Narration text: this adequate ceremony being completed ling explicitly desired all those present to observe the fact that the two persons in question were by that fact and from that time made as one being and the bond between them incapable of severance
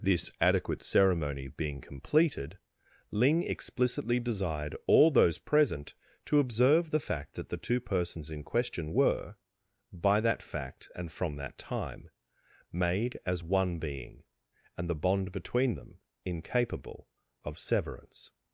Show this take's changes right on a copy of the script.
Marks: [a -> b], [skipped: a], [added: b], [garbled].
this adequate ceremony being completed ling explicitly desired all those present to observe the fact that the two persons in question were by that fact and from that time made as one being and the bond between them incapable of severance